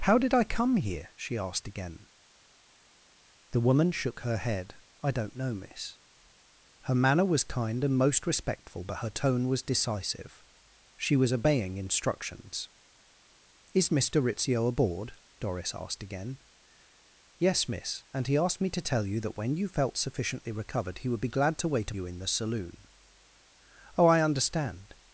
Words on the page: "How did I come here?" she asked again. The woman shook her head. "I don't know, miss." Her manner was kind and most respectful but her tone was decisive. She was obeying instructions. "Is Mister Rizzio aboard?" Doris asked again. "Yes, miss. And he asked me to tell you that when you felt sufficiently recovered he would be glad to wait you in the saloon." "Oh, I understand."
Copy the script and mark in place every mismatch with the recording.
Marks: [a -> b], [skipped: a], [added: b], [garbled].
"How did I come here?" she asked again. The woman shook her head. "I don't know, miss." Her manner was kind and most respectful but her tone was decisive. She was obeying instructions. "Is Mister Rizzio aboard?" Doris asked again. "Yes, miss. And he asked me to tell you that when you felt sufficiently recovered he would be glad to wait you in the saloon." "Oh, I understand."